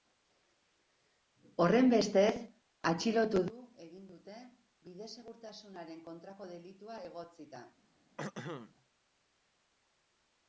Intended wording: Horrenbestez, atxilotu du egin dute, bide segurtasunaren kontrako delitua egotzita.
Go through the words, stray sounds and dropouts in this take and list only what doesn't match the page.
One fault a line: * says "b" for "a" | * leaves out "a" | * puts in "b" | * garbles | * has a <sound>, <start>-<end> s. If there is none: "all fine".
* has a throat clearing, 8.2-8.7 s